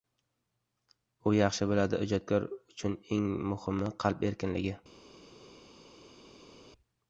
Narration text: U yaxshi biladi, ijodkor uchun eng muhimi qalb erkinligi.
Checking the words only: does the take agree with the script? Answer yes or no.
yes